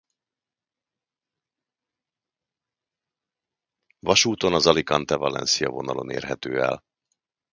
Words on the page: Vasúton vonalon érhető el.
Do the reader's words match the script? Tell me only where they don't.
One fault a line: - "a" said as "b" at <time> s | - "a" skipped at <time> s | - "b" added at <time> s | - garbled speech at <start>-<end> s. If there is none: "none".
- "az Alicante Valencia" added at 4.5 s